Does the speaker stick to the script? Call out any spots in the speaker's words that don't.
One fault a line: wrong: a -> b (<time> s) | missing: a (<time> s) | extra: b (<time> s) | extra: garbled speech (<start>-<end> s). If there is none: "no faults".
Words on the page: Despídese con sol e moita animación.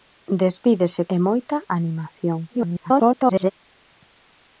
missing: con sol (1.0 s)
extra: garbled speech (2.5-3.5 s)